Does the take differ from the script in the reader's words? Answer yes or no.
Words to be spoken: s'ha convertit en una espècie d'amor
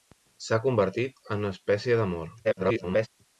yes